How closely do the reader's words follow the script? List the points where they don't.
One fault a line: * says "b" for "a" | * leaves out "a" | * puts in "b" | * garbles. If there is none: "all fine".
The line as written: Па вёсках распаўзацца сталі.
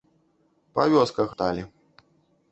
* leaves out "распаўзацца"